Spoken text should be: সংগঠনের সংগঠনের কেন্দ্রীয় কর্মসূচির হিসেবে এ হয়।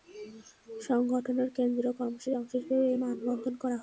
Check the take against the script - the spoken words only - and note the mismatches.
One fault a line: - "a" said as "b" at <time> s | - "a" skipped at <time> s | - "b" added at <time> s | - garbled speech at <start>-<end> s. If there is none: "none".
- "সংগঠনের" skipped at 1.5 s
- "অংশ" added at 2.4 s
- "মানববন্ধন করা" added at 3.0 s